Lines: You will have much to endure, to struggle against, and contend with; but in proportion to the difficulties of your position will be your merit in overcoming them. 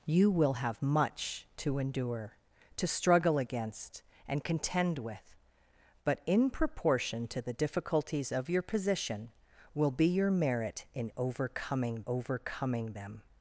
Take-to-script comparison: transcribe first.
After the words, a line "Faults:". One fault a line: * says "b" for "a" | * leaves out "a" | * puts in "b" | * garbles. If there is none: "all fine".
You will have much to endure, to struggle against, and contend with; but in proportion to the difficulties of your position will be your merit in overcoming overcoming them.
Faults:
* puts in "overcoming"